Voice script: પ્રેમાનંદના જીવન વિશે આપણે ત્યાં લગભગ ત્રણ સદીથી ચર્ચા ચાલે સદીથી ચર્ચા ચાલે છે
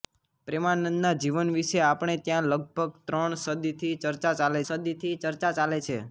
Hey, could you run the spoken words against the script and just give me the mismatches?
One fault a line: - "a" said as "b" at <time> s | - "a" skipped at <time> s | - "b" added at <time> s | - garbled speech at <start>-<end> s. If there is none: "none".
none